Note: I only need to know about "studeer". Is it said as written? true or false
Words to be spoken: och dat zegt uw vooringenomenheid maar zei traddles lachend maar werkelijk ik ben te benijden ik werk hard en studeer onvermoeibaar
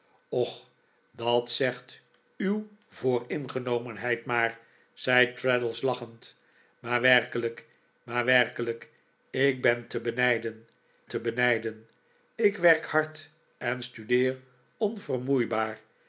true